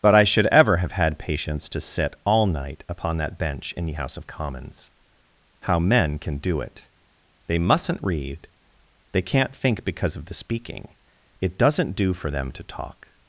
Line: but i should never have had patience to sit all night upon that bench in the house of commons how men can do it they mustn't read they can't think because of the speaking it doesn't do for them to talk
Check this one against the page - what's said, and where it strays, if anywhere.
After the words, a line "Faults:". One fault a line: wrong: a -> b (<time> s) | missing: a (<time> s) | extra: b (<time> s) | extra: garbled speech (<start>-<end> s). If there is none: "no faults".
but i should ever have had patience to sit all night upon that bench in the house of commons how men can do it they mustn't read they can't think because of the speaking it doesn't do for them to talk
Faults:
wrong: never -> ever (0.5 s)